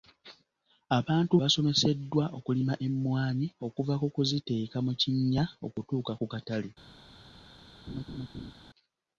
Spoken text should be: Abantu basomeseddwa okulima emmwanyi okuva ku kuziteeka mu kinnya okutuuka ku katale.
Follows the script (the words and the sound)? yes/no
no